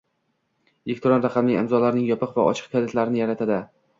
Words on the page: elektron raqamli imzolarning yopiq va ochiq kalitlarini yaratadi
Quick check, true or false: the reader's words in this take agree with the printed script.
true